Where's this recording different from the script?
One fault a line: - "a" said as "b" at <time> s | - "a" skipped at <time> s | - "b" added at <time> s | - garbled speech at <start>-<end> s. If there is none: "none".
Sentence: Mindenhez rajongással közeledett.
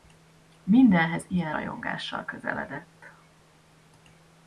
- "ilyen" added at 1.3 s